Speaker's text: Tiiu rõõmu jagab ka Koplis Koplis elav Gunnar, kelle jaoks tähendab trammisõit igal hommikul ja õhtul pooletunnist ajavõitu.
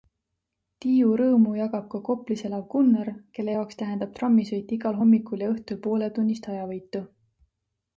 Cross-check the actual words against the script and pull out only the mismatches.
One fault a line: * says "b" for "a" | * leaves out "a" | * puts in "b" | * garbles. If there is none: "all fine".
* leaves out "Koplis"